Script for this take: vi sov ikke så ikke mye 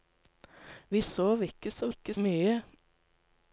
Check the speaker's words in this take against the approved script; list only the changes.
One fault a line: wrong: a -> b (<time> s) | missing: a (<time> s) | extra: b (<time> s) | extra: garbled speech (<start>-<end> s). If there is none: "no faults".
no faults